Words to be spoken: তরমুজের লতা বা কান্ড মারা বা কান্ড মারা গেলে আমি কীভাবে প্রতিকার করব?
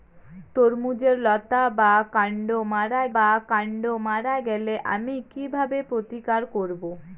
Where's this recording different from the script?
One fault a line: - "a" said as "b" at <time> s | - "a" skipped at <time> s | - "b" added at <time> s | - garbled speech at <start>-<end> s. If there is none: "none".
none